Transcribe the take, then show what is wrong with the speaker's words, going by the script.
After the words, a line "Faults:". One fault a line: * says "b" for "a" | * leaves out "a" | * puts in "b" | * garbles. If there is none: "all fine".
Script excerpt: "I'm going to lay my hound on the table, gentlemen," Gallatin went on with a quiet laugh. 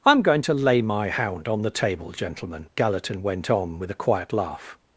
"I'm going to lay my hound on the table, gentlemen," Gallatin went on with a quiet laugh.
Faults:
all fine